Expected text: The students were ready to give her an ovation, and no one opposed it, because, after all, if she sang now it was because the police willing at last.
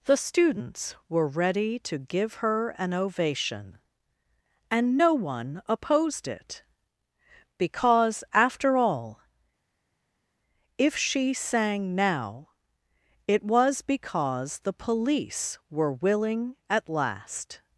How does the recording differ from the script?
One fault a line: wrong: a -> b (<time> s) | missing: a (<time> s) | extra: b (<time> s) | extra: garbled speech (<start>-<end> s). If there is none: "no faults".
extra: were (15.7 s)